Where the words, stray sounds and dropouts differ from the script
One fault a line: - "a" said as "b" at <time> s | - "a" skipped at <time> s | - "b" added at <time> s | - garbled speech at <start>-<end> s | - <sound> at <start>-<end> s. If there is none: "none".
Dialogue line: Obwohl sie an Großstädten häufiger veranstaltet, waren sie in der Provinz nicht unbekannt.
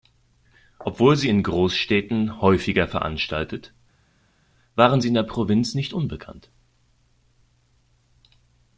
- "an" said as "in" at 1.3 s